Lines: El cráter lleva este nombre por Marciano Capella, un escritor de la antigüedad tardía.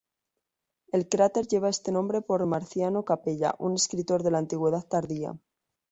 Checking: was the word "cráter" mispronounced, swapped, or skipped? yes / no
no